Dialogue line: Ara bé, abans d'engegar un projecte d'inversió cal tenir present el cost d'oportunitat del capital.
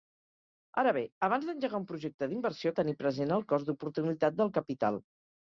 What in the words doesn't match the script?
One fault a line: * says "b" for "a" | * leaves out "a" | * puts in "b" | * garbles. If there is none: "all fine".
* leaves out "cal"